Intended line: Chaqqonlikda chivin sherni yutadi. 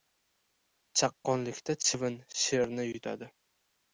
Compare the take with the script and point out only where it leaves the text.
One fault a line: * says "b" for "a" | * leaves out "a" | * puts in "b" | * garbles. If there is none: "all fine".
all fine